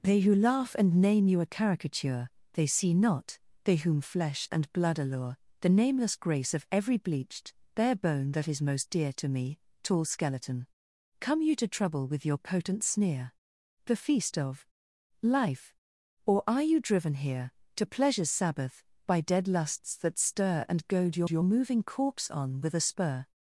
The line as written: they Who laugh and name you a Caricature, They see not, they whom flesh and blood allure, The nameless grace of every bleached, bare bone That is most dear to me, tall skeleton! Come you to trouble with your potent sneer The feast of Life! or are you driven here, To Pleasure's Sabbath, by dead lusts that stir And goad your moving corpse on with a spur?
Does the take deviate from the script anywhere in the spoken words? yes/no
yes